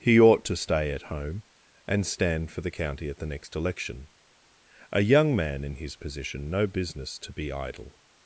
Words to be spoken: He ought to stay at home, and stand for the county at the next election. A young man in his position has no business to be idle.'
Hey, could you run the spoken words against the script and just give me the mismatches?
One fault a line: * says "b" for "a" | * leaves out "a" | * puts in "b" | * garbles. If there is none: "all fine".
* leaves out "has"